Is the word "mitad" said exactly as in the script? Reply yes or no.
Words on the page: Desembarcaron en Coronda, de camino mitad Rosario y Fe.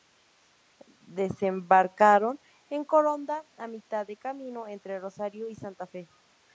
no